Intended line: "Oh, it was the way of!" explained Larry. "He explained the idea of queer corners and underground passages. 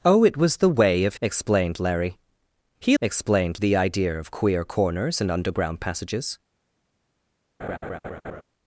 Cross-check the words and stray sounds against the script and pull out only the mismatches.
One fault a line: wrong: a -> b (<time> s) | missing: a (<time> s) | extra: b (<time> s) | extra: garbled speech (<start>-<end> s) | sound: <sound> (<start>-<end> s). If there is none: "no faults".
sound: laugh (7.6-8.4 s)